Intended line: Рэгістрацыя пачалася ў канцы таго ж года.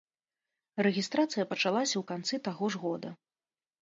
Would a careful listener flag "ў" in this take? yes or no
no